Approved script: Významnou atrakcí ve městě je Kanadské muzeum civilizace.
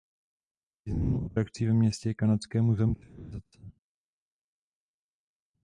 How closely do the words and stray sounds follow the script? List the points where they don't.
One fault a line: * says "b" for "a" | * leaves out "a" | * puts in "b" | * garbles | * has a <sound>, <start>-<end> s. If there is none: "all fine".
all fine